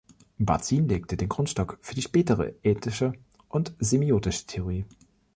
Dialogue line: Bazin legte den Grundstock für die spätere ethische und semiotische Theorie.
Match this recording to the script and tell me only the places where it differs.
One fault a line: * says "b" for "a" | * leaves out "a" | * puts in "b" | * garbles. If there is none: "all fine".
all fine